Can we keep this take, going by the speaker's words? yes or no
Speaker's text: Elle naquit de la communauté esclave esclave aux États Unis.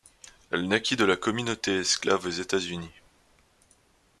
no